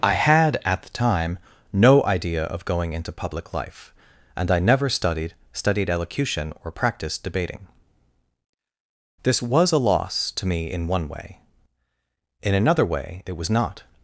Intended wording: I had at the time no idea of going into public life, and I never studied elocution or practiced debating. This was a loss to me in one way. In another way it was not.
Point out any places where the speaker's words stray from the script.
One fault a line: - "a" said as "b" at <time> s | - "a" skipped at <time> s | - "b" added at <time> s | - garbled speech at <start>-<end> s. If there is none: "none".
- "studied" added at 5.5 s